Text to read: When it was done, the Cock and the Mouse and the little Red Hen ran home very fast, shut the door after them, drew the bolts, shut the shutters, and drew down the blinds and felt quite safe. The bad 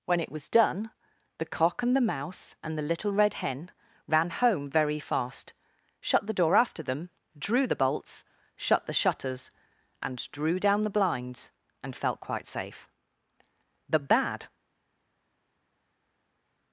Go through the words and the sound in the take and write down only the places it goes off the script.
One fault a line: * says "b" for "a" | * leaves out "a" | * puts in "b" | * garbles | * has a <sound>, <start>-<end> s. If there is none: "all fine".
all fine